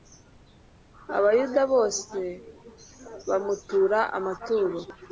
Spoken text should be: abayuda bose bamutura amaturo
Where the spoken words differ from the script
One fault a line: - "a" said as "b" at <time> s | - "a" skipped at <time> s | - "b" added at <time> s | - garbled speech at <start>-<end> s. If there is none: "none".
none